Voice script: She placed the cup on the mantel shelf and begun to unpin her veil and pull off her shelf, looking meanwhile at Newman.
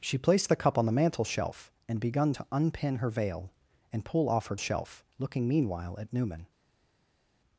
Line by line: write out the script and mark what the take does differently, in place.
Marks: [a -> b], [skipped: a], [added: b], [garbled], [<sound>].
She placed the cup on the mantel shelf and begun to unpin her veil and pull off her shelf, looking meanwhile at Newman.